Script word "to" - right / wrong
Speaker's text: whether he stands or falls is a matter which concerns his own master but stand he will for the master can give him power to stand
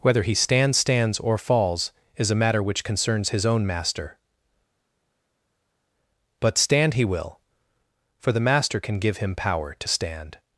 right